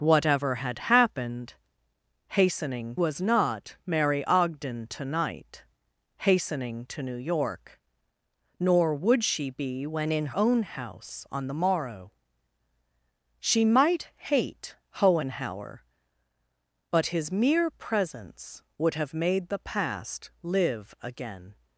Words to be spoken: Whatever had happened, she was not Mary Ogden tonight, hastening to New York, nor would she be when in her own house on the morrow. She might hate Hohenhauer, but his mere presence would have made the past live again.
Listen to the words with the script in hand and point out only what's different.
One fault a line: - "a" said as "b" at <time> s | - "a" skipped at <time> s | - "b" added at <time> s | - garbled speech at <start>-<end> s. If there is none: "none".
- "she" said as "hastening" at 2.3 s
- "her" skipped at 10.4 s